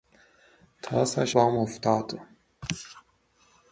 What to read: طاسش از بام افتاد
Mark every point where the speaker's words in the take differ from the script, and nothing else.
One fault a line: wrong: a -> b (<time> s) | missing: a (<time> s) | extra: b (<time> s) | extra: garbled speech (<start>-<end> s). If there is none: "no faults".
missing: از (1.4 s)